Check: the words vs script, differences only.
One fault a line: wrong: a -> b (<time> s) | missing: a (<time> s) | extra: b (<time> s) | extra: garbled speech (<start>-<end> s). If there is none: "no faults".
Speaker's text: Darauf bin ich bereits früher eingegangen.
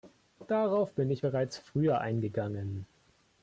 no faults